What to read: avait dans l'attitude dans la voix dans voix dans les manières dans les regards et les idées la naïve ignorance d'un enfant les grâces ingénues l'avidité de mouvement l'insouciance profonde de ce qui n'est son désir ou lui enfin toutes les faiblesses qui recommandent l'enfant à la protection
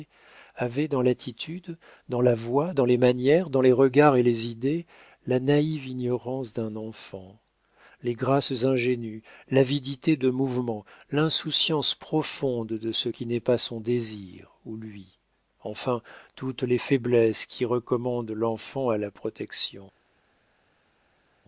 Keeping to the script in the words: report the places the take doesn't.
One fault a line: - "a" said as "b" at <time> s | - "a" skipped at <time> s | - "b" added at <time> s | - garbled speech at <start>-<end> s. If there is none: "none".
- "voix dans" skipped at 2.8 s
- "pas" added at 13.4 s